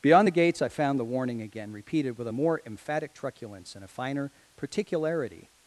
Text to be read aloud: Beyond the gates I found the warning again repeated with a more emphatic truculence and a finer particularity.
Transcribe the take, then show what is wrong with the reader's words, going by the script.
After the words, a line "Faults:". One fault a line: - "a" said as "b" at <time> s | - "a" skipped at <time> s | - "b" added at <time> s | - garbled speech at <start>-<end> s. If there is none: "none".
Beyond the gates I found the warning again repeated with a more emphatic truculence and a finer particularity.
Faults:
none